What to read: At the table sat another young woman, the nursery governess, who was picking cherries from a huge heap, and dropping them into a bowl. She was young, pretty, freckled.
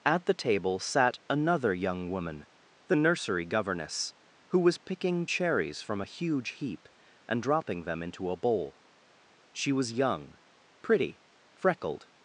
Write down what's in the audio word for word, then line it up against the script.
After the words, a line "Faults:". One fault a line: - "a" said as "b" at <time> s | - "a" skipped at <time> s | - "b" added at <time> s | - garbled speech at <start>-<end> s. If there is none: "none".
At the table sat another young woman, the nursery governess, who was picking cherries from a huge heap, and dropping them into a bowl. She was young, pretty, freckled.
Faults:
none